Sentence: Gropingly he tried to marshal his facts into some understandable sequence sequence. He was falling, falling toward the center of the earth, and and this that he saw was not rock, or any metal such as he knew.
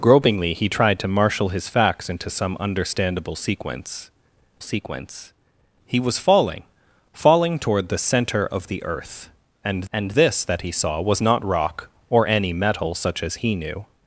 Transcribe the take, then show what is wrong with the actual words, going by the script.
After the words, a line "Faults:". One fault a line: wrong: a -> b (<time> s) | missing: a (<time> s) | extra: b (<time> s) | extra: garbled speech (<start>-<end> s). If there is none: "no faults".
Gropingly he tried to marshal his facts into some understandable sequence sequence. He was falling, falling toward the center of the earth, and and this that he saw was not rock, or any metal such as he knew.
Faults:
no faults